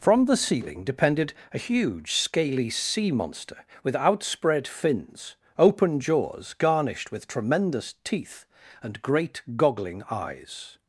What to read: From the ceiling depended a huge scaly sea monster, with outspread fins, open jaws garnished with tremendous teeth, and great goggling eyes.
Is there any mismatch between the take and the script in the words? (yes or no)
no